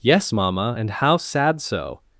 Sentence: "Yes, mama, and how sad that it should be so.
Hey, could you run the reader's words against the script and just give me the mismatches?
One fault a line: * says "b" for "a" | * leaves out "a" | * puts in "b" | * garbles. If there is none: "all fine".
* leaves out "that it should be"